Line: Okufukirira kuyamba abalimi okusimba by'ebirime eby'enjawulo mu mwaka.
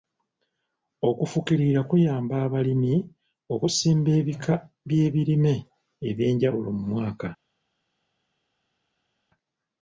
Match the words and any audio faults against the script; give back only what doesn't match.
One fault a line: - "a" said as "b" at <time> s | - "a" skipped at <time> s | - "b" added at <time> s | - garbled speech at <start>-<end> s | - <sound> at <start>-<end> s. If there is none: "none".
- "ebika" added at 4.2 s